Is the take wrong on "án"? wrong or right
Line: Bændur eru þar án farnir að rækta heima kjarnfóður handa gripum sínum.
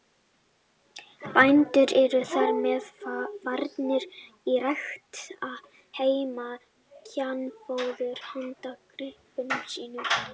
wrong